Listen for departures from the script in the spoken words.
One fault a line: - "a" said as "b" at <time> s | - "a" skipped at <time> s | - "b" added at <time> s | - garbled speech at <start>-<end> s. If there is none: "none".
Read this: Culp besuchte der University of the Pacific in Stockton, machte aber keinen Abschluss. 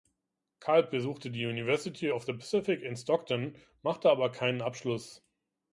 - "der" said as "die" at 1.3 s